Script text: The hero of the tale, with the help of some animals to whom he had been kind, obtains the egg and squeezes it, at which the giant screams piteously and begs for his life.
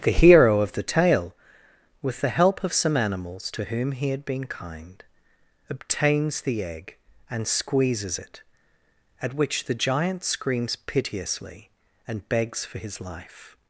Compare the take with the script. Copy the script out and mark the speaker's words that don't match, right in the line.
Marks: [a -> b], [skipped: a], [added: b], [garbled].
The hero of the tale, with the help of some animals to whom he had been kind, obtains the egg and squeezes it, at which the giant screams piteously and begs for his life.